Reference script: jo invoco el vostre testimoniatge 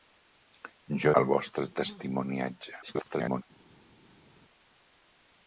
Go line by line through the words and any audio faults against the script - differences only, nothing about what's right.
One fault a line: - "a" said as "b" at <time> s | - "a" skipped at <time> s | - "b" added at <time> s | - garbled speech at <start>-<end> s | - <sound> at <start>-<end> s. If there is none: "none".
- "invoco" skipped at 1.1 s
- garbled speech at 2.8-3.4 s